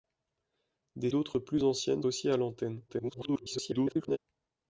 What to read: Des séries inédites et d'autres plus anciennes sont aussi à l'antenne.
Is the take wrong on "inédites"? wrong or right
wrong